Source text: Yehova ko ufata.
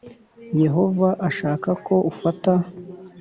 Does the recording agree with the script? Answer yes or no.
no